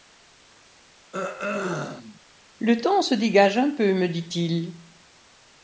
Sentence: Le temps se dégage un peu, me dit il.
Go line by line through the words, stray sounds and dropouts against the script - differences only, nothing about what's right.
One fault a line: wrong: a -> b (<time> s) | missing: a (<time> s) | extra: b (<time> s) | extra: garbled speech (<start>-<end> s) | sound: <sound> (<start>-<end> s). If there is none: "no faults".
sound: throat clearing (1.1-2.2 s)